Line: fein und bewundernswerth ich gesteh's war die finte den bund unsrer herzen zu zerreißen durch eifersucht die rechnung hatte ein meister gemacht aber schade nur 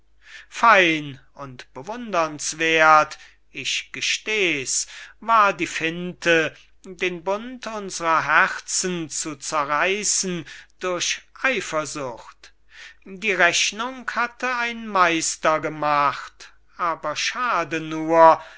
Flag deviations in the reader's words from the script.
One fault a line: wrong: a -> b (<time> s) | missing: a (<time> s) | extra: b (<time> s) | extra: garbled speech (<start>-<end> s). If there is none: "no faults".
no faults